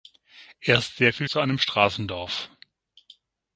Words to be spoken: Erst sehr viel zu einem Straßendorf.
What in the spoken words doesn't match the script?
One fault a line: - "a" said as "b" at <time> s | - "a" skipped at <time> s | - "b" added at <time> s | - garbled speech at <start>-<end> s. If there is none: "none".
none